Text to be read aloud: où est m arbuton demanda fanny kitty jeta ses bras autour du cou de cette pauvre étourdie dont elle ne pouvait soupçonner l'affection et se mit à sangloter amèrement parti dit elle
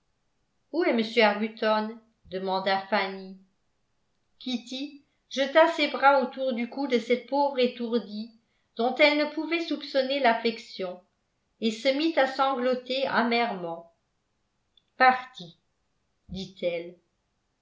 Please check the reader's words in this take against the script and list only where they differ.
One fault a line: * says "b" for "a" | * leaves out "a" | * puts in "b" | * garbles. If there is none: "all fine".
all fine